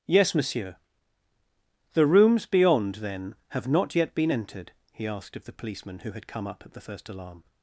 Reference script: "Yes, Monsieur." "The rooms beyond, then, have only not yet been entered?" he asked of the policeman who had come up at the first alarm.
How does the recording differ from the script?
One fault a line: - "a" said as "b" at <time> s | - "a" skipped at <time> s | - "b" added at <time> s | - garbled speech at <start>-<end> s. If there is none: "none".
- "only" skipped at 3.7 s